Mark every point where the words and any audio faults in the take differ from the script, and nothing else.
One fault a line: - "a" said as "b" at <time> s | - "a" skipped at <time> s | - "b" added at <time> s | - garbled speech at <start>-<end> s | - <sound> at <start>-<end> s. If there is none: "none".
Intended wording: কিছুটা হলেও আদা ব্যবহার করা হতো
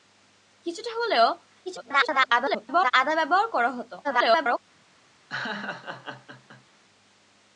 - garbled speech at 1.7-2.9 s
- garbled speech at 4.0-4.6 s
- laugh at 5.3-6.7 s